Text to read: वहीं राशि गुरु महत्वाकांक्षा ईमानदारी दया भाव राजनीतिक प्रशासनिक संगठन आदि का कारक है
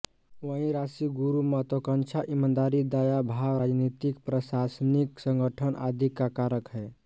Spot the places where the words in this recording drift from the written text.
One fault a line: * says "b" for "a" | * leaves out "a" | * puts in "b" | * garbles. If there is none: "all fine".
all fine